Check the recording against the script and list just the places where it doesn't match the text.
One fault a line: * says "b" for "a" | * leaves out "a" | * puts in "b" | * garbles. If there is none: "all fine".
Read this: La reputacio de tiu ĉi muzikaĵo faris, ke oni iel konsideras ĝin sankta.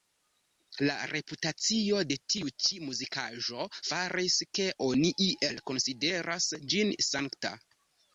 all fine